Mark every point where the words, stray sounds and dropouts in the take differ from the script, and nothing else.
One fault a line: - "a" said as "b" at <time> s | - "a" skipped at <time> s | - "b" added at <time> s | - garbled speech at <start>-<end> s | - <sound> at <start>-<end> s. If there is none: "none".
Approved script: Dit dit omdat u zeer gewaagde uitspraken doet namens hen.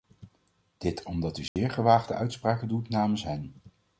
- "dit" skipped at 1.0 s
- dropout at 1.5-1.6 s